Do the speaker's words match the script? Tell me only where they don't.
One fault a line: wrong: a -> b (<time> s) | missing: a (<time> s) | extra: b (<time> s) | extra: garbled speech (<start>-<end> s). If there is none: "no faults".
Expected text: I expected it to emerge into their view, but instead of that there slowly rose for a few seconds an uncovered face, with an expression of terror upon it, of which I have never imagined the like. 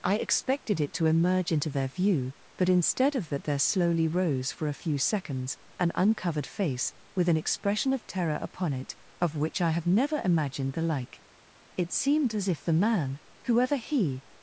extra: It seemed as if the man whoever he (11.8 s)